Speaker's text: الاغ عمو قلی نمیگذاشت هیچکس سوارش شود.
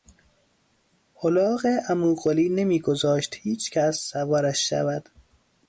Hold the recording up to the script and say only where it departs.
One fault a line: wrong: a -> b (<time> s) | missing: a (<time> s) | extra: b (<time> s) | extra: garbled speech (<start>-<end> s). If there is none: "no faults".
no faults